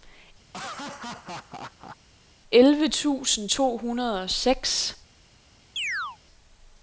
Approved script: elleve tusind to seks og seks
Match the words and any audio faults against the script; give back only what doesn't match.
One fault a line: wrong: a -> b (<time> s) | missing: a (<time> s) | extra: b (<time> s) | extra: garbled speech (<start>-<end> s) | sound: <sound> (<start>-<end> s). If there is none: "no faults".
sound: laugh (0.5-2.0 s)
wrong: seks -> hundrede (3.8 s)
sound: chirp (5.8-6.2 s)